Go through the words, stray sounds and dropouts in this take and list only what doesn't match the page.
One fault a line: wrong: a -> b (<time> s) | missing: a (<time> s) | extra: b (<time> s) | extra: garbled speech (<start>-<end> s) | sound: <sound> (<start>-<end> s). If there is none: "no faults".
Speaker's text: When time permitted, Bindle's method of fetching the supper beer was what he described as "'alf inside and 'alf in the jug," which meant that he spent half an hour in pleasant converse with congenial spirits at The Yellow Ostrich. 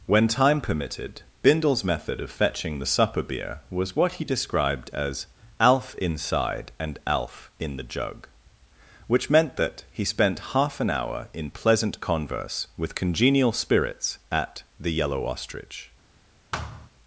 sound: thud (16.5-16.9 s)